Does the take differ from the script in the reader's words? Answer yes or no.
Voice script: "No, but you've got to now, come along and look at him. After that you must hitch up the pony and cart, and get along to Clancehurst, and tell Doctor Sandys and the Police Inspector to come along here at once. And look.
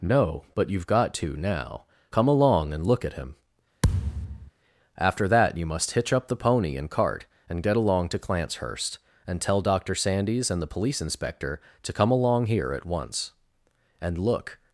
no